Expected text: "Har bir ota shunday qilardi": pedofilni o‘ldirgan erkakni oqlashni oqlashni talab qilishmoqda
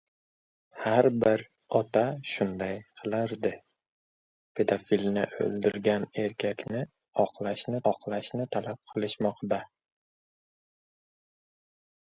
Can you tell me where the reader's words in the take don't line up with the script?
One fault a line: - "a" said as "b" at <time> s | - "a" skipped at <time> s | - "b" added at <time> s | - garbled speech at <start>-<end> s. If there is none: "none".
none